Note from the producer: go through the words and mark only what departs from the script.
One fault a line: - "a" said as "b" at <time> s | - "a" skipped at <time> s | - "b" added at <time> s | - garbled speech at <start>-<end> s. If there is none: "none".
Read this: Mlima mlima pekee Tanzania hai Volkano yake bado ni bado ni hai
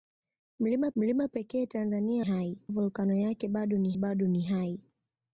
none